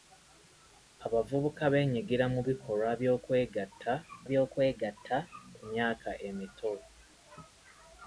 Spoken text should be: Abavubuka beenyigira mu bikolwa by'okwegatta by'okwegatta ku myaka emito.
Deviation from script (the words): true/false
false